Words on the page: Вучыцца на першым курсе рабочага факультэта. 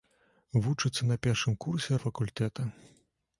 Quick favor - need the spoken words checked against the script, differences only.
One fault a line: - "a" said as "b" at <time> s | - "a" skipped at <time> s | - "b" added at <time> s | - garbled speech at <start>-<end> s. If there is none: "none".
- "рабочага" skipped at 2.0 s